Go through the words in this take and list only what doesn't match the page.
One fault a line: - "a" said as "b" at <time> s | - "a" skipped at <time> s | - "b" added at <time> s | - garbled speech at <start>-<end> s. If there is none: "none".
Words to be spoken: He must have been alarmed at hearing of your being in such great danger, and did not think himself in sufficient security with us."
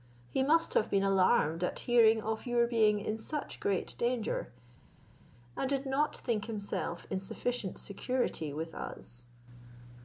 none